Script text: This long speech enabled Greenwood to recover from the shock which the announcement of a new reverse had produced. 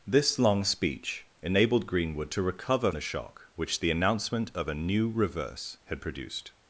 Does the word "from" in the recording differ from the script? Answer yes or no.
yes